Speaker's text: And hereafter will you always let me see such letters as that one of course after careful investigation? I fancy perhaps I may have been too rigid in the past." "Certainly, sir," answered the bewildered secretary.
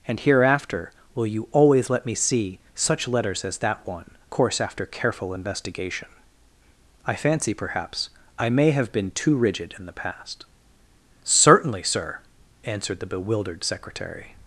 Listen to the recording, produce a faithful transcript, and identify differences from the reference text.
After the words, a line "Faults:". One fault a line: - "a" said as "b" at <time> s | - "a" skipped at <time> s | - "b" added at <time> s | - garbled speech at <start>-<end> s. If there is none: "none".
And hereafter will you always let me see such letters as that one course after careful investigation? I fancy perhaps I may have been too rigid in the past." "Certainly, sir," answered the bewildered secretary.
Faults:
- "of" skipped at 4.1 s